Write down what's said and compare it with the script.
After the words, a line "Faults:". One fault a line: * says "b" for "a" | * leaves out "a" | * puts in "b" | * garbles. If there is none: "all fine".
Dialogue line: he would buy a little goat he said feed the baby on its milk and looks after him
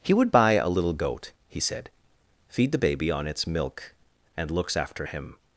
he would buy a little goat he said feed the baby on its milk and looks after him
Faults:
all fine